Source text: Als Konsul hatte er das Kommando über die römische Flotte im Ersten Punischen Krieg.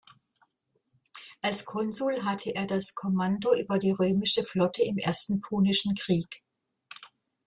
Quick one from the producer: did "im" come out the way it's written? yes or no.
yes